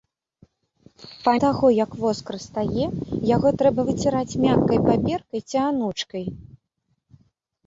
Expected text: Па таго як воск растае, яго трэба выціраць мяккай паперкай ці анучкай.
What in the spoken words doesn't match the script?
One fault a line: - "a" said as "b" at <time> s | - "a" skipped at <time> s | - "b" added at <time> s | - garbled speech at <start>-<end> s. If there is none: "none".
none